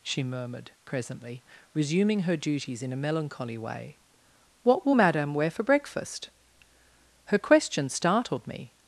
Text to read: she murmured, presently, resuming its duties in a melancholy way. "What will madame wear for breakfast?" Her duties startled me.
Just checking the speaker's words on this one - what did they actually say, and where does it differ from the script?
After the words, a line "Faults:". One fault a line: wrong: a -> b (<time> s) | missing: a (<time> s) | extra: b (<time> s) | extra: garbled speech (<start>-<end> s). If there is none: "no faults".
she murmured, presently, resuming her duties in a melancholy way. "What will madame wear for breakfast?" Her question startled me.
Faults:
wrong: its -> her (2.2 s)
wrong: duties -> question (7.4 s)